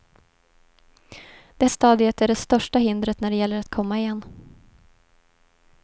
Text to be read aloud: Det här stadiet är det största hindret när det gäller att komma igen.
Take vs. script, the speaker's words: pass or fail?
fail